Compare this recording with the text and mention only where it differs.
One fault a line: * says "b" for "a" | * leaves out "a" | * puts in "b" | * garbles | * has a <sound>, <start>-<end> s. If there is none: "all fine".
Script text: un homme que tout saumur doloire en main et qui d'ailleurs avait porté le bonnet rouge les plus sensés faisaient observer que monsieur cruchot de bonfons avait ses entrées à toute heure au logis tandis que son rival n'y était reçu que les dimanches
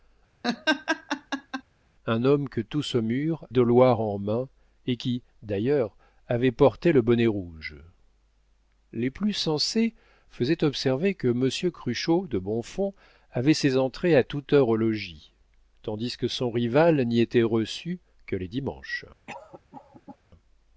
* has a laugh, 0.4-1.6 s
* has a cough, 19.3-20.2 s